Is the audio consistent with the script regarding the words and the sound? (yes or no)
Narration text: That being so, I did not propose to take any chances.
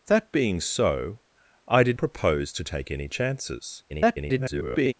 no